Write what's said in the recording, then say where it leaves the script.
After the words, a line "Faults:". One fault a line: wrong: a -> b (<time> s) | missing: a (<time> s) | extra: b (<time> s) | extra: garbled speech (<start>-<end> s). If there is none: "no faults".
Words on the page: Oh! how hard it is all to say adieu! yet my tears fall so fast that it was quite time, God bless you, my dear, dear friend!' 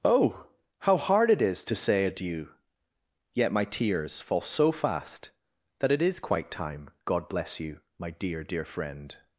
Oh! how hard it is to say adieu! yet my tears fall so fast that it is quite time, God bless you, my dear, dear friend!'
Faults:
missing: all (1.6 s)
wrong: was -> is (6.0 s)